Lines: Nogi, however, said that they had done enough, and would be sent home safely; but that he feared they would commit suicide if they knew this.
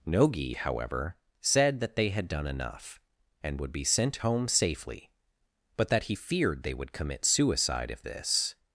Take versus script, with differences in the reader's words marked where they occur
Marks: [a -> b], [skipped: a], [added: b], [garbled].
Nogi, however, said that they had done enough, and would be sent home safely; but that he feared they would commit suicide if [skipped: they knew] this.